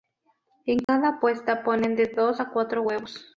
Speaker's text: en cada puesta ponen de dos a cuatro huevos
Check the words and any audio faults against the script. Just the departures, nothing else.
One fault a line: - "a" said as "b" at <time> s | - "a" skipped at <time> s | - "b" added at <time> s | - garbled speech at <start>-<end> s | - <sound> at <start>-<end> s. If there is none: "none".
- dropout at 0.8-0.9 s